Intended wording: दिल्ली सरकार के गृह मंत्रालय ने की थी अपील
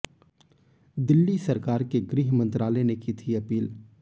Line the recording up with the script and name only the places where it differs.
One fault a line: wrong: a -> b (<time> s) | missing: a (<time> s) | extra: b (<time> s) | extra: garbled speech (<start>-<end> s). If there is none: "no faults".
no faults